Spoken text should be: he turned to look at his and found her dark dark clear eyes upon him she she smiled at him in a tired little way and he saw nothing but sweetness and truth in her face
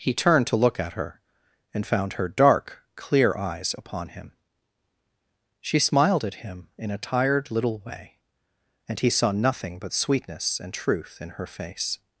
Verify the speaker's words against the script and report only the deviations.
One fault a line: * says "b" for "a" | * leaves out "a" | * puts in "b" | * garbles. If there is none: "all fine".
* says "her" for "his"
* leaves out "dark"
* leaves out "she"